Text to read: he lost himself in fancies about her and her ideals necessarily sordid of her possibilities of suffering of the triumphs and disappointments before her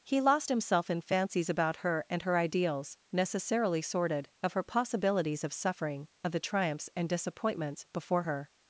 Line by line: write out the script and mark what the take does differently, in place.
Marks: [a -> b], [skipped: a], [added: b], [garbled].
he lost himself in fancies about her and her ideals necessarily sordid of her possibilities of suffering of the triumphs and disappointments before her